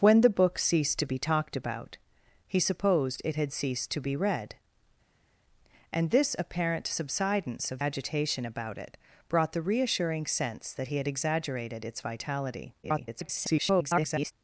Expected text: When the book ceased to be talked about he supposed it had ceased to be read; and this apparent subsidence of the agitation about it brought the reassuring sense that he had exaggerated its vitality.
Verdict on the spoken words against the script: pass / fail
fail